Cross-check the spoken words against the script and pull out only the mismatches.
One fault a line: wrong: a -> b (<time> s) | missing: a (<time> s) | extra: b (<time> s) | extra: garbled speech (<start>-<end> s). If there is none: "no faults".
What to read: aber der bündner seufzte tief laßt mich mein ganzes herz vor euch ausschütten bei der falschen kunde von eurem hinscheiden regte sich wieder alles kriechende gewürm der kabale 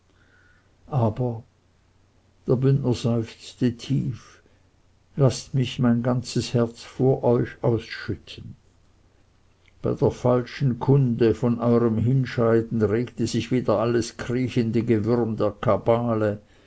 no faults